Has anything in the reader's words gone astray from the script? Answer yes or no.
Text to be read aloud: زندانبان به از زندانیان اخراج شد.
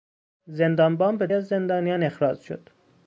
no